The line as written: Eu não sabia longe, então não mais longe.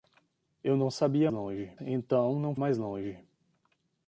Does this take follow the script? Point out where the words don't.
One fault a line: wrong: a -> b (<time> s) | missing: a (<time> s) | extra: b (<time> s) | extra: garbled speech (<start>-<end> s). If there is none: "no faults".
no faults